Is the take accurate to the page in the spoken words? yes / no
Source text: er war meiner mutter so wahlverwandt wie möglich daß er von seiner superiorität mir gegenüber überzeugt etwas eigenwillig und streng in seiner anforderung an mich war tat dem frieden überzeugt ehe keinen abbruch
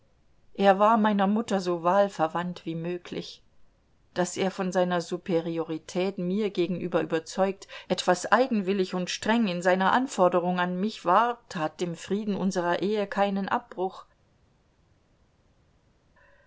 no